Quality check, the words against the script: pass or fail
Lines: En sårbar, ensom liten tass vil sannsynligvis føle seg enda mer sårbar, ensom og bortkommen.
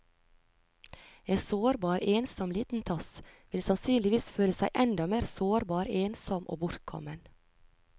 pass